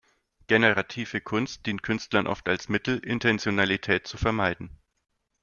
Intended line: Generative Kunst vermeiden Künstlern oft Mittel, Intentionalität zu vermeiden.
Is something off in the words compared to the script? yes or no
yes